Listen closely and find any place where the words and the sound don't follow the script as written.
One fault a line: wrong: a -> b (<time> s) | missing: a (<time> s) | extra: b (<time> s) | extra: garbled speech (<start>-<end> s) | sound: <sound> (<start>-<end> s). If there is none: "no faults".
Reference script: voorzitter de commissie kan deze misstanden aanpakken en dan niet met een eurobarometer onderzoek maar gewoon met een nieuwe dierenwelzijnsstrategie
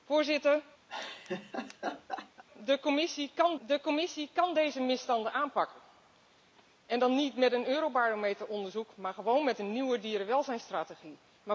sound: laugh (0.9-2.4 s)
extra: de commissie kan (3.7 s)